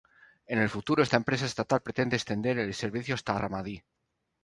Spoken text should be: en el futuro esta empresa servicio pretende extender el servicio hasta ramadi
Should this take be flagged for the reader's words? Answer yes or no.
yes